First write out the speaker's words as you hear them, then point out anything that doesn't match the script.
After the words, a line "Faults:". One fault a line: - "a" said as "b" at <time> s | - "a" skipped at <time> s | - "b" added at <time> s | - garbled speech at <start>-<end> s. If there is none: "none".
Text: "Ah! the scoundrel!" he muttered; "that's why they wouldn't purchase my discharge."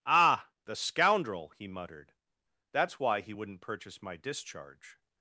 "Ah! the scoundrel!" he muttered; "that's why he wouldn't purchase my discharge."
Faults:
- "they" said as "he" at 3.2 s